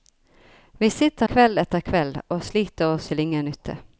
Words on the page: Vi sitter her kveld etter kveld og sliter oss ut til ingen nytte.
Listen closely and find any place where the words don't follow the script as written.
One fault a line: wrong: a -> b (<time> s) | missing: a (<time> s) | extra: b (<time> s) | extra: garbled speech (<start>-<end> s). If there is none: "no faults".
missing: her (1.2 s)
missing: ut (3.1 s)